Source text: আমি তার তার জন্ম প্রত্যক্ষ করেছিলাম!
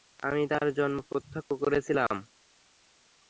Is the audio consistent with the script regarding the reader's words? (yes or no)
no